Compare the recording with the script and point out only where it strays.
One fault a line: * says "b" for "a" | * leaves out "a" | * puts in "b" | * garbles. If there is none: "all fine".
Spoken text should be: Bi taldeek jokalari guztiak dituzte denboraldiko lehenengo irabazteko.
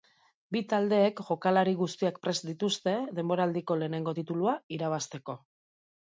* puts in "prest"
* puts in "titulua"